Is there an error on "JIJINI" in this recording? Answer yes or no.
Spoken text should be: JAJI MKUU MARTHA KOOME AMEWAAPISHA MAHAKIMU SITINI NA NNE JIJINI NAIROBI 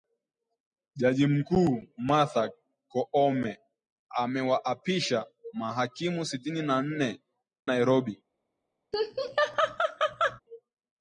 yes